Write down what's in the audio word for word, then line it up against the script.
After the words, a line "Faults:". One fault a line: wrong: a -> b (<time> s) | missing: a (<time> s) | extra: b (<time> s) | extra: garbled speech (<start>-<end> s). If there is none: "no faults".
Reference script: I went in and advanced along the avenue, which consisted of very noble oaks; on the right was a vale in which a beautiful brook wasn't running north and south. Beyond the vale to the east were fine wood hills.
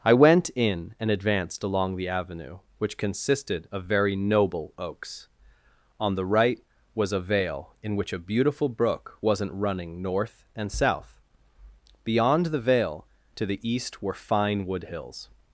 I went in and advanced along the avenue, which consisted of very noble oaks; on the right was a vale in which a beautiful brook wasn't running north and south. Beyond the vale to the east were fine wood hills.
Faults:
no faults